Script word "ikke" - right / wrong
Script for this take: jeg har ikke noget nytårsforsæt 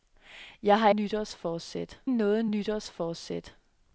wrong